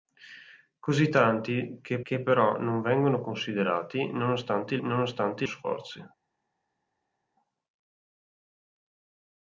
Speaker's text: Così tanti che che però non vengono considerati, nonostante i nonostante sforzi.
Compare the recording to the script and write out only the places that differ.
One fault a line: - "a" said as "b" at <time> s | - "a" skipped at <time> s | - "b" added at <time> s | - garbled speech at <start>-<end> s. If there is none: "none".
none